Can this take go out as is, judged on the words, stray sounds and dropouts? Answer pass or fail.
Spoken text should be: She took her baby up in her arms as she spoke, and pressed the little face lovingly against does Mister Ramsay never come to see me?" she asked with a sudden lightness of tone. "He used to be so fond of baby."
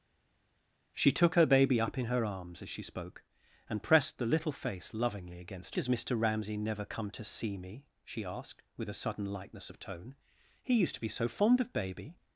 pass